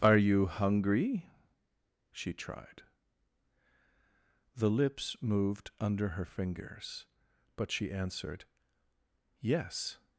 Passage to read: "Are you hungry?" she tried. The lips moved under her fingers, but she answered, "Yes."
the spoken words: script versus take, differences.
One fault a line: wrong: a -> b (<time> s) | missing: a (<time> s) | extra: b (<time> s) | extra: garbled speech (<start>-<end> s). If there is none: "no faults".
no faults